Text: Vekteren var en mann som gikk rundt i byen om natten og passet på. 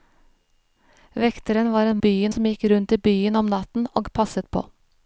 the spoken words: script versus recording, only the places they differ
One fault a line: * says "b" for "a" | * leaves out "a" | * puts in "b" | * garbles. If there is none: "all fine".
* says "byen" for "mann"